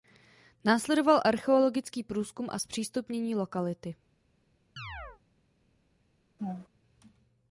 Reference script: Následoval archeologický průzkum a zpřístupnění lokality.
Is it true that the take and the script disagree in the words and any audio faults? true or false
true